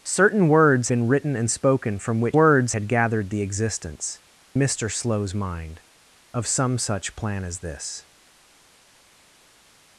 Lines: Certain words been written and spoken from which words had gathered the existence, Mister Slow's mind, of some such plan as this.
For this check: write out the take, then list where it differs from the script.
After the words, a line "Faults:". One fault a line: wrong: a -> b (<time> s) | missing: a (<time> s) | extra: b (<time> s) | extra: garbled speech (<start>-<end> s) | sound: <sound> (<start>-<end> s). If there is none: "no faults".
Certain words been written and spoken from which words had gathered the existence, Mister Slow's mind, of some such plan as this.
Faults:
no faults